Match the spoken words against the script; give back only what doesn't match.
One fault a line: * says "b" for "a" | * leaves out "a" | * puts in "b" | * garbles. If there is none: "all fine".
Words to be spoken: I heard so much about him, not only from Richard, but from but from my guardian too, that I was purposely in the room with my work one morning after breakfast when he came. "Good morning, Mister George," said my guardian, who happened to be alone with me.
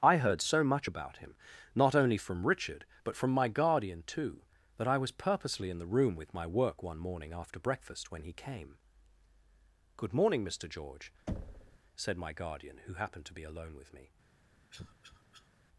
* leaves out "but from"